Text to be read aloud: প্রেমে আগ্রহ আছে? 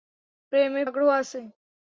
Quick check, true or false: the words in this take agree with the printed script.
true